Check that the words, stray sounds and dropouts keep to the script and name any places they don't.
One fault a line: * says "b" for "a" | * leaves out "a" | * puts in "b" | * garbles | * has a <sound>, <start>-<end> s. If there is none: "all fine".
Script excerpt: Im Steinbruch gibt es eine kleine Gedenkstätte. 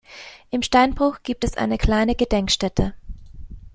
all fine